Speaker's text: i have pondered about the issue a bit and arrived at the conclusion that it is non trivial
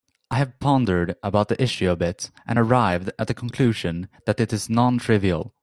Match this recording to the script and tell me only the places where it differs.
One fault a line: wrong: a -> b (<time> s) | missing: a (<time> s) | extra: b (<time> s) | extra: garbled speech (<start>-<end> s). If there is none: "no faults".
no faults